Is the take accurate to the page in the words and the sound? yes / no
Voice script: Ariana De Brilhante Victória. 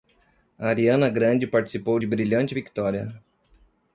no